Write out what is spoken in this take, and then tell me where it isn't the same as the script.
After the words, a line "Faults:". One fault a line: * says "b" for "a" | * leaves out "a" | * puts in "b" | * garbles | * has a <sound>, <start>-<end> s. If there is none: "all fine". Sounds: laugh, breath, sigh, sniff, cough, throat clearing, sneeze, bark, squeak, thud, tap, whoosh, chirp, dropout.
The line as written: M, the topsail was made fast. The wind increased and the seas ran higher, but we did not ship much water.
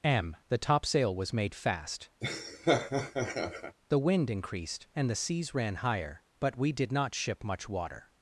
M, the topsail was made fast. The wind increased and the seas ran higher, but we did not ship much water.
Faults:
* has a laugh, 2.2-3.8 s